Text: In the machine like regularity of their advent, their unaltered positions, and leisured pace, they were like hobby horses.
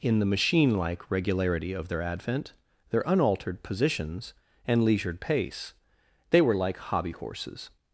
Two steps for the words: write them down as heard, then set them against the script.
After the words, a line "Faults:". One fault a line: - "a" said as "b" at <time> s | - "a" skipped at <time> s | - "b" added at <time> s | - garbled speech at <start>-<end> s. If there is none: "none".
In the machine like regularity of their advent, their unaltered positions, and leisured pace, they were like hobby horses.
Faults:
none